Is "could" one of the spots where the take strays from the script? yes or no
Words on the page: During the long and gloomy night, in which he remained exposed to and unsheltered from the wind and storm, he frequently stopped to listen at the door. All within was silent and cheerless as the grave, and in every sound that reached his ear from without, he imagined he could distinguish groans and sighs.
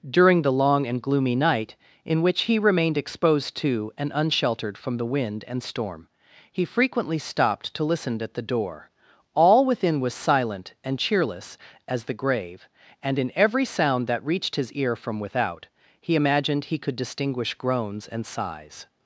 no